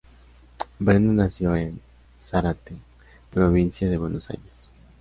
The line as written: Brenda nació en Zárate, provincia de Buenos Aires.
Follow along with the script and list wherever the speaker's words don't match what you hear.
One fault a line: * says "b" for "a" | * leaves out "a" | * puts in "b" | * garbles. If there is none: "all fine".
all fine